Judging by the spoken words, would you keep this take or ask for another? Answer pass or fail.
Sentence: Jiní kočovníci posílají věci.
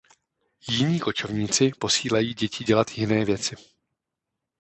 fail